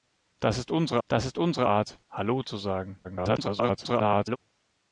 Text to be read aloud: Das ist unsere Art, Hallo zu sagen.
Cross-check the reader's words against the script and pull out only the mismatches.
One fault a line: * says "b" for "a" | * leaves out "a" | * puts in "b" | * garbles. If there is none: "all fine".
* puts in "das ist unsere"
* garbles